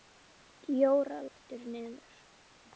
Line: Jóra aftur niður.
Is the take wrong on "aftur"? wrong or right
right